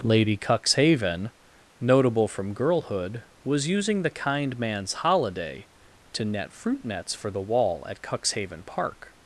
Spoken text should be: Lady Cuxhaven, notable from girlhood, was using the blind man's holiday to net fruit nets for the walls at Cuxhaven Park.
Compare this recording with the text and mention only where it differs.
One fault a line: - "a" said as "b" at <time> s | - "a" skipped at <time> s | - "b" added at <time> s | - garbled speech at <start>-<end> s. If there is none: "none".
- "blind" said as "kind" at 4.1 s
- "walls" said as "wall" at 7.4 s